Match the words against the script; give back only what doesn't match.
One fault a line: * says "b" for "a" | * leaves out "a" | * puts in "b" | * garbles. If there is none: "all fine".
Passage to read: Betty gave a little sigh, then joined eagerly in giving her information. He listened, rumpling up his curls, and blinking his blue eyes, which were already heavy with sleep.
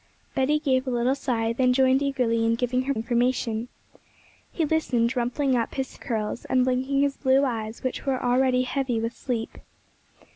all fine